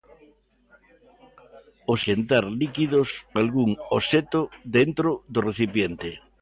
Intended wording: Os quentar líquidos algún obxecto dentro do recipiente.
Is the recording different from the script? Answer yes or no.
no